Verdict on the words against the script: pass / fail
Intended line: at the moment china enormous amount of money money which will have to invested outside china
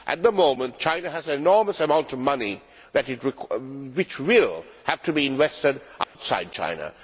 fail